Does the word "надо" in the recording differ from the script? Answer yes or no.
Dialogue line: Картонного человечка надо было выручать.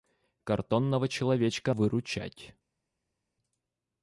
yes